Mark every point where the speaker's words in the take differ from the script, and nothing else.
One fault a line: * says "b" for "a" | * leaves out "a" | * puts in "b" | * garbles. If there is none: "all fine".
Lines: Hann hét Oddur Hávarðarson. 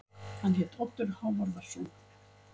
all fine